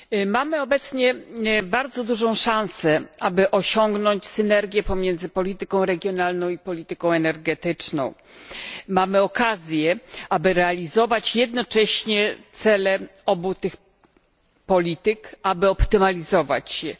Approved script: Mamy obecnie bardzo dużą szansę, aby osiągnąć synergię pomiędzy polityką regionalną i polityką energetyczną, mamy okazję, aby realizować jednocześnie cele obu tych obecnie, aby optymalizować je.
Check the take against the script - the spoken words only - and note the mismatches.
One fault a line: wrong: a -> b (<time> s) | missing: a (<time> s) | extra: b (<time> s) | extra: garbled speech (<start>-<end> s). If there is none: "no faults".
wrong: obecnie -> polityk (14.7 s)